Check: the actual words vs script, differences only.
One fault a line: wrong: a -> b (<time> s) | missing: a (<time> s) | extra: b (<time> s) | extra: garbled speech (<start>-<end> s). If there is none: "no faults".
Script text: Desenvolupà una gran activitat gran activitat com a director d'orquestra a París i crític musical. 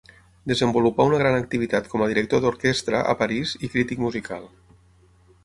missing: gran activitat (1.9 s)